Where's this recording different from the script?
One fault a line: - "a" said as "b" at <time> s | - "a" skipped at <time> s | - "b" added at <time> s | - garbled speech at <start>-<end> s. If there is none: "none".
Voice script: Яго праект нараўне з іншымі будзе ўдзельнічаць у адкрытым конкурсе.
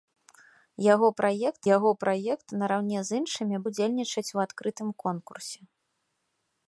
- "яго праект" added at 1.7 s
- "будзе" skipped at 3.6 s